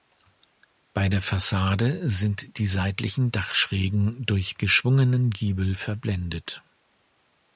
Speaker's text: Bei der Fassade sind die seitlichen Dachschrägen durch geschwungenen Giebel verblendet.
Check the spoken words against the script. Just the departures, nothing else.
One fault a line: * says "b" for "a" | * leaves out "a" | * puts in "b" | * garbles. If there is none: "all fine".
all fine